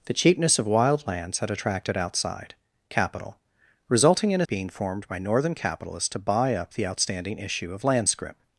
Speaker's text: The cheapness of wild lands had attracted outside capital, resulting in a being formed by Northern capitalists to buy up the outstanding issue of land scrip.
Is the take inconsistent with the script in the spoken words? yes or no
no